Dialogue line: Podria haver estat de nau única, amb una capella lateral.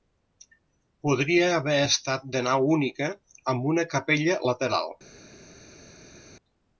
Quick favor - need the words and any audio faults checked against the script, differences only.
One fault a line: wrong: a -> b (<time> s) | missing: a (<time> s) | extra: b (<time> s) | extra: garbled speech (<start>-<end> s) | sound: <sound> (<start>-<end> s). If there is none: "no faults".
no faults